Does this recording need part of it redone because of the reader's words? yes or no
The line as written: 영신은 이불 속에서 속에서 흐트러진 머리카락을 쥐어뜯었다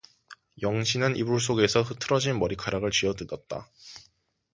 yes